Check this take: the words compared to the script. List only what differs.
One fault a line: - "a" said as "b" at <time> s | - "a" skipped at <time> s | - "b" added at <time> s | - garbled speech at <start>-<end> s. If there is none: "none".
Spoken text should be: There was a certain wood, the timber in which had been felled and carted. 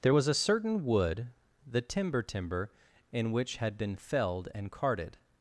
- "timber" added at 2.2 s